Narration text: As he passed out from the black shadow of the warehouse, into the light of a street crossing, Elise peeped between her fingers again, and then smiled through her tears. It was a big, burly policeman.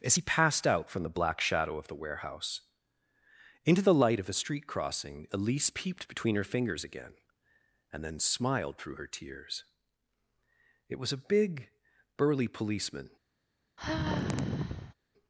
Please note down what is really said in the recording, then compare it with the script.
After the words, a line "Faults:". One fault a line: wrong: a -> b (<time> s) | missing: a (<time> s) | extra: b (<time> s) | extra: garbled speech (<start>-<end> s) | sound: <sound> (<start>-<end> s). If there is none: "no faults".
As he passed out from the black shadow of the warehouse, into the light of a street crossing, Elise peeped between her fingers again, and then smiled through her tears. It was a big, burly policeman.
Faults:
sound: sigh (13.8-14.9 s)